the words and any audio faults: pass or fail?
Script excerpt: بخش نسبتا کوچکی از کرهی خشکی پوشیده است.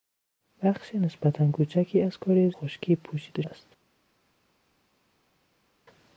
pass